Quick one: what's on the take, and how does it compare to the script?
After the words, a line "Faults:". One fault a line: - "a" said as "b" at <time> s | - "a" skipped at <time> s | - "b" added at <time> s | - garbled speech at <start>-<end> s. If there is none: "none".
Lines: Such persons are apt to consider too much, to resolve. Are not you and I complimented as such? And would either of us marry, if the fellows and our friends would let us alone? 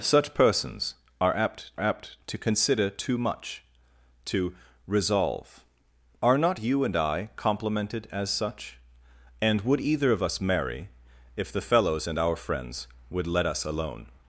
Such persons are apt apt to consider too much, to resolve. Are not you and I complimented as such? And would either of us marry, if the fellows and our friends would let us alone?
Faults:
- "apt" added at 1.8 s